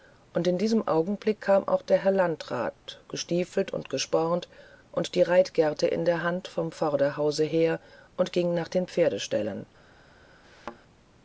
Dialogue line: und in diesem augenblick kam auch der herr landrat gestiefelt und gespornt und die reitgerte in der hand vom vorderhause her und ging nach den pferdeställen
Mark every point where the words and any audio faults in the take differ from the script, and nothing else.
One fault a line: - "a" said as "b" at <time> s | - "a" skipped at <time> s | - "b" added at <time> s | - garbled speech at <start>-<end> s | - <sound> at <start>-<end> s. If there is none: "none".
- thud at 10.4-10.8 s